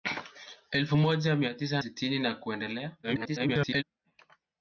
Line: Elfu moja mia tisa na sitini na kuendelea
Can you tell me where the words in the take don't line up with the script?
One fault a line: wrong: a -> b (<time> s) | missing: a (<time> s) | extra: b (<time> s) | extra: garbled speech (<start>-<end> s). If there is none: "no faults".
missing: na (1.8 s)
extra: garbled speech (3.0-3.8 s)